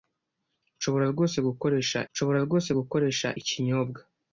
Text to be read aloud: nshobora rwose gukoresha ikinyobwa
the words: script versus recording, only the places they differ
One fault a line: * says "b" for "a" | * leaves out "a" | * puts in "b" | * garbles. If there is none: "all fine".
* puts in "nshobora rwose gukoresha"